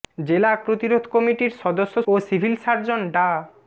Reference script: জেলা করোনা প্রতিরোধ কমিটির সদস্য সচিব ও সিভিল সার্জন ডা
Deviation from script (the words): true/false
true